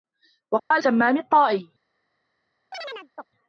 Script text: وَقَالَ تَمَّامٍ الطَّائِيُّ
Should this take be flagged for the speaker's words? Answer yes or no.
no